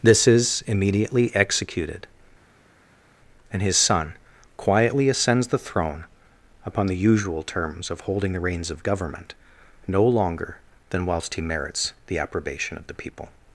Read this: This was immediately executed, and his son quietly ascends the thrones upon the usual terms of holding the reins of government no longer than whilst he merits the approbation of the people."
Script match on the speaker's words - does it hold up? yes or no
no